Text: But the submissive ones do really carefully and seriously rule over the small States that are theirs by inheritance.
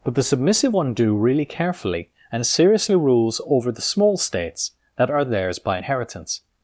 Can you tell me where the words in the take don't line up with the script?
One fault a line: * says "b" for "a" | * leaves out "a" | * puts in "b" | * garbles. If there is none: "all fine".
* says "one" for "ones"
* says "rules" for "rule"